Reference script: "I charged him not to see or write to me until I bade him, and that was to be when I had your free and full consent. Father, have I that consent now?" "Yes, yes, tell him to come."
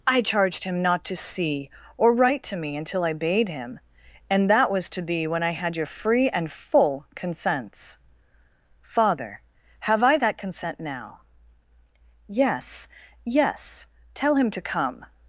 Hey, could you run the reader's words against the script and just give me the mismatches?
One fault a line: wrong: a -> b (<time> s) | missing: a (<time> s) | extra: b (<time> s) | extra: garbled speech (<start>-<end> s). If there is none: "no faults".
wrong: consent -> consents (7.1 s)